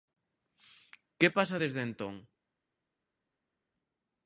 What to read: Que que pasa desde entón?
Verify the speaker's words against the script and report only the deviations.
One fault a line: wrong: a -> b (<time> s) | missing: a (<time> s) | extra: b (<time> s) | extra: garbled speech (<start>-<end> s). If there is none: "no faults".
missing: que (1.3 s)